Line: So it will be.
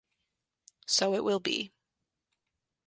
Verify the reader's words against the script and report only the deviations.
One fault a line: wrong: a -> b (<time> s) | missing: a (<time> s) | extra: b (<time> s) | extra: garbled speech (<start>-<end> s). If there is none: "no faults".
no faults